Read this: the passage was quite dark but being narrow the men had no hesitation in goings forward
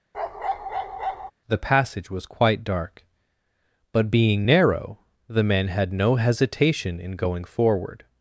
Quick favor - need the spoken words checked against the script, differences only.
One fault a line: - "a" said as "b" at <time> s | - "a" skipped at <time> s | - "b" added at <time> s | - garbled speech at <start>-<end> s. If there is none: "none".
- "goings" said as "going" at 7.1 s